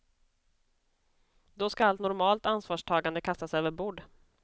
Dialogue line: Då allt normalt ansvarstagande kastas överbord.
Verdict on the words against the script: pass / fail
fail